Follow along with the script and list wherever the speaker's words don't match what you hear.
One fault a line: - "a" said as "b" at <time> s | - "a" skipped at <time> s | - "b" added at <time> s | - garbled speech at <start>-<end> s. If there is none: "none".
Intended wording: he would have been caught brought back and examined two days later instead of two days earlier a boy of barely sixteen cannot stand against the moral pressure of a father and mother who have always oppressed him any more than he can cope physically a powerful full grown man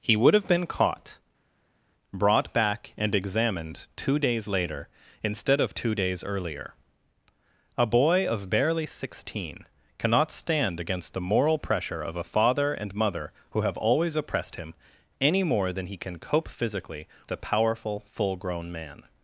none